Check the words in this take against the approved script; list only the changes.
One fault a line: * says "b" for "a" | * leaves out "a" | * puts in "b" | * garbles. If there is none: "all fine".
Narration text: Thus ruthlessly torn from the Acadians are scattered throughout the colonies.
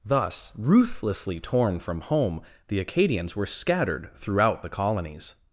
* puts in "home"
* says "were" for "are"